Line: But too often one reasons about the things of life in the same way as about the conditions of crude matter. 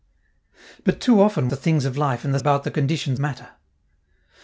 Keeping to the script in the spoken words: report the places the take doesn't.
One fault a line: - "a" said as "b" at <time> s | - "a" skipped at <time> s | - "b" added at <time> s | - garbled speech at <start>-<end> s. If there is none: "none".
- "one reasons about" skipped at 1.5 s
- "same way as" skipped at 2.4 s
- "of crude" skipped at 3.2 s